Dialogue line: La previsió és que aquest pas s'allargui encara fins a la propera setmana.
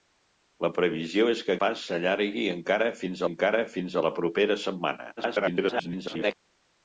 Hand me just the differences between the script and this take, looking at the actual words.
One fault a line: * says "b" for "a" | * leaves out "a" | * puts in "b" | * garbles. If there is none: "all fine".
* leaves out "aquest"
* puts in "encara fins"
* garbles